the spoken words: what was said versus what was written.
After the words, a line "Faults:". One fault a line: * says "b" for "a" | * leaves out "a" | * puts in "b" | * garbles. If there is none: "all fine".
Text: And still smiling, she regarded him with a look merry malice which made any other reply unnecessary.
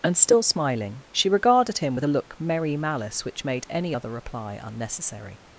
And still smiling, she regarded him with a look merry malice which made any other reply unnecessary.
Faults:
all fine